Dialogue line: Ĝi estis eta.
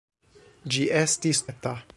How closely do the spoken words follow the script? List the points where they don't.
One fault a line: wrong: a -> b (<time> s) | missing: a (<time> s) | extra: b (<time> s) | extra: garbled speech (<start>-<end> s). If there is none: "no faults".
no faults